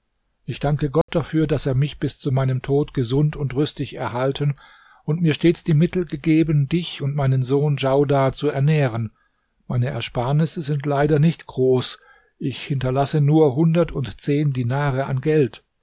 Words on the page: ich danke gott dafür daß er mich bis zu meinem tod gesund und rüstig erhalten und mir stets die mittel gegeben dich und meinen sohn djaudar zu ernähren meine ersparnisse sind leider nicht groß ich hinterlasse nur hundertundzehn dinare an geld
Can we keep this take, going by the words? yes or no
yes